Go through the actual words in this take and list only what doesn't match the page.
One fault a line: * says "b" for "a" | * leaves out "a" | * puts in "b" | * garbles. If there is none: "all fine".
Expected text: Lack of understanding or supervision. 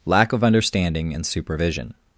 * says "and" for "or"